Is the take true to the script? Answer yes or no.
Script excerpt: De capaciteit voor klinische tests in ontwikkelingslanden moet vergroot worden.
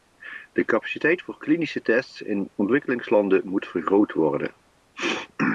yes